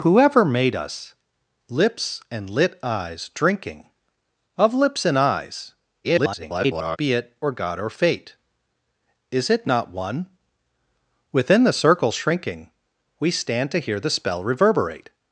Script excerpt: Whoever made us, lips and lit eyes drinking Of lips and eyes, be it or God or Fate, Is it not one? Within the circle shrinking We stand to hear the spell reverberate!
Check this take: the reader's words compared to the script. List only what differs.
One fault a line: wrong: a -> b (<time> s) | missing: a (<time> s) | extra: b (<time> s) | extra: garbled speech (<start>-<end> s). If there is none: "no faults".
extra: garbled speech (6.0-7.0 s)